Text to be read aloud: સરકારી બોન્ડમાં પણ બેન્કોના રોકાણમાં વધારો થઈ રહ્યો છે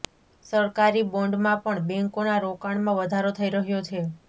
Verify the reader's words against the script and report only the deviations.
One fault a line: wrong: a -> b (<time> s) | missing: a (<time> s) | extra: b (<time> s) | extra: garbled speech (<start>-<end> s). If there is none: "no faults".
no faults